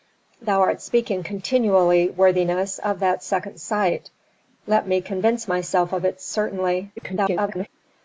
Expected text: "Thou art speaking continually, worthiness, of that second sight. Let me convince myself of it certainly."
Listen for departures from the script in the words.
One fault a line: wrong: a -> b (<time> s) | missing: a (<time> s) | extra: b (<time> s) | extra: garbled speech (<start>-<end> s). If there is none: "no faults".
extra: garbled speech (7.0-7.7 s)